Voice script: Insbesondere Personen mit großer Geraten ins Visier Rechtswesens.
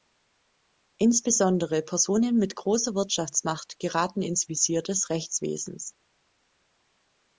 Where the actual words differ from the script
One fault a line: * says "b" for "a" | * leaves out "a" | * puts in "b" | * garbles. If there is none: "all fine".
* puts in "Wirtschaftsmacht"
* puts in "des"